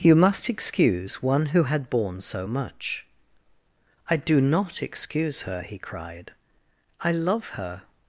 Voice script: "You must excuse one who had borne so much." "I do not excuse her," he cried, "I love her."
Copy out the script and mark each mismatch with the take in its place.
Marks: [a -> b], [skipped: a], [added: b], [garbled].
"You must excuse one who had borne so much." "I do not excuse her," he cried, "I love her."